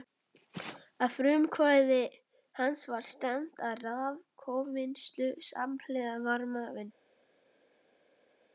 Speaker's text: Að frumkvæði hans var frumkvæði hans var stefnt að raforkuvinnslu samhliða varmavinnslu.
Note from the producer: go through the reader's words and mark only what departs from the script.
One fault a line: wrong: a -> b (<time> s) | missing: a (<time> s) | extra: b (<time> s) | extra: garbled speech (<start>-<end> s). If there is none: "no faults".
missing: frumkvæði hans var (3.1 s)